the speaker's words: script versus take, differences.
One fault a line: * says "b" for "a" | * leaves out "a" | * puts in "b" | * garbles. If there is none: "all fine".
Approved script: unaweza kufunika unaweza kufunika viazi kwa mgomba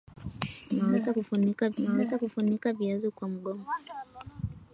all fine